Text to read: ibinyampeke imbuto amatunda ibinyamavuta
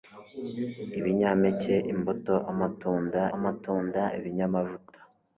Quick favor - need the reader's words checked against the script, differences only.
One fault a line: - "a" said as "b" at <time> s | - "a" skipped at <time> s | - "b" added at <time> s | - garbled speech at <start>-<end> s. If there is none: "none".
- "amatunda" added at 3.4 s